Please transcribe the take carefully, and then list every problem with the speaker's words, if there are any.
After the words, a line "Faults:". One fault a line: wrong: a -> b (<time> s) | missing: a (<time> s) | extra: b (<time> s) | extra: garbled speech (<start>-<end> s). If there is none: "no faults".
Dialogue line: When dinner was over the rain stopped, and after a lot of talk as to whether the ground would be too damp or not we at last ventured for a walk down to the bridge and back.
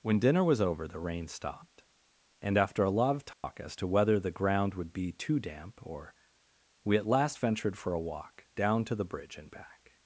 When dinner was over the rain stopped, and after a lot of talk as to whether the ground would be too damp or we at last ventured for a walk down to the bridge and back.
Faults:
missing: not (6.2 s)